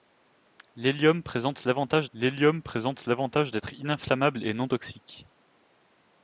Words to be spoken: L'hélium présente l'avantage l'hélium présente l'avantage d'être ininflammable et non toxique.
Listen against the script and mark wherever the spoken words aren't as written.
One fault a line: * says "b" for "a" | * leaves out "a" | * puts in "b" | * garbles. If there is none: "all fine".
all fine